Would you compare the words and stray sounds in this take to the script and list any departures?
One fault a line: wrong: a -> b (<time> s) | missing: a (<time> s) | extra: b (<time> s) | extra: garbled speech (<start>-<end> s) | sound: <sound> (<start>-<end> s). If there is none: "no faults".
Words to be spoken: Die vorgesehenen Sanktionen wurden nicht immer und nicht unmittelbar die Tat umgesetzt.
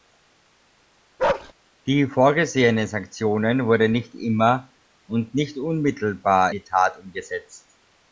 sound: bark (1.2-1.5 s)